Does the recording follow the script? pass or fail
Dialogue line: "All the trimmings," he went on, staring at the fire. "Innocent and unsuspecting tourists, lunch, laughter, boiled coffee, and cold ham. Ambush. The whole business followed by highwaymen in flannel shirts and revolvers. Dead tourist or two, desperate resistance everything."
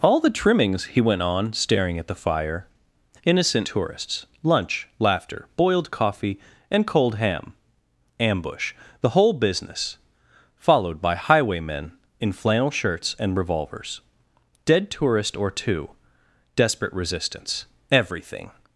fail